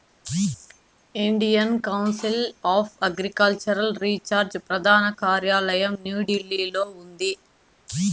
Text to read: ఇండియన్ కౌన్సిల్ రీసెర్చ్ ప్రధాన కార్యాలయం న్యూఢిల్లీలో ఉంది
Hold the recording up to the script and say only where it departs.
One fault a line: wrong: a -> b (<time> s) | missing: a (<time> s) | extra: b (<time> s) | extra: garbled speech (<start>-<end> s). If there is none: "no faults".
extra: ఆఫ్ అగ్రికల్చరల్ (2.7 s)